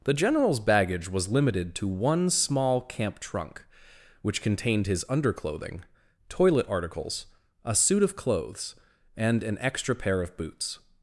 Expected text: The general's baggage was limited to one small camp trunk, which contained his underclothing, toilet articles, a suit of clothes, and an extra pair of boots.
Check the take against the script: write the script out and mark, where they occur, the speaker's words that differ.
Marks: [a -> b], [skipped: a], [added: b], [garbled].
The general's baggage was limited to one small camp trunk, which contained his underclothing, toilet articles, a suit of clothes, and an extra pair of boots.